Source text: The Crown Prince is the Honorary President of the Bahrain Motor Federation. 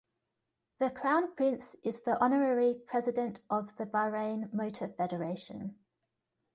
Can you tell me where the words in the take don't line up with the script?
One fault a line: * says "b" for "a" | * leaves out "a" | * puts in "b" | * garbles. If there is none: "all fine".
all fine